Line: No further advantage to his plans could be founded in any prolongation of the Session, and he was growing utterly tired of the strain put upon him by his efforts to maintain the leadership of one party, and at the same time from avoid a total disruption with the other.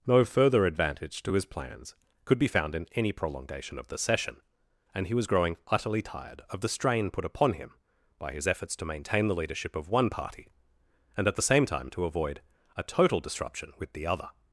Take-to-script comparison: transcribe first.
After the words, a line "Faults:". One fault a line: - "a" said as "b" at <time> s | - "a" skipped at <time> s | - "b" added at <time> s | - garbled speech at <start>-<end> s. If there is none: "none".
No further advantage to his plans could be found in any prolongation of the Session, and he was growing utterly tired of the strain put upon him by his efforts to maintain the leadership of one party, and at the same time to avoid a total disruption with the other.
Faults:
- "founded" said as "found" at 2.5 s
- "from" said as "to" at 11.9 s